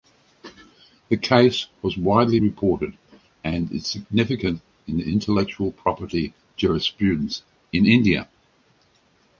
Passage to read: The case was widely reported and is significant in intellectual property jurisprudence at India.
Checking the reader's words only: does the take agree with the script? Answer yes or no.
no